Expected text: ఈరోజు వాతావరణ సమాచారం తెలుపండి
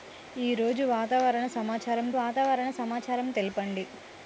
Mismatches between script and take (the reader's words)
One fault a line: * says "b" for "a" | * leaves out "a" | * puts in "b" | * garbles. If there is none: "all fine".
* puts in "వాతావరణ సమాచారం"